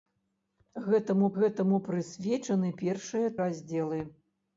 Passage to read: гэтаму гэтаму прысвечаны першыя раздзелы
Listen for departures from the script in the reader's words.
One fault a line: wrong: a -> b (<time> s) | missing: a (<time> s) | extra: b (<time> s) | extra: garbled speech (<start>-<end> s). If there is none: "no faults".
no faults